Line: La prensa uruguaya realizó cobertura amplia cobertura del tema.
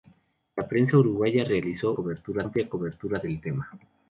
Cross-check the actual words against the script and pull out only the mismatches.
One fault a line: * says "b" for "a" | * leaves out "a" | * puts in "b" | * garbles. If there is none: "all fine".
all fine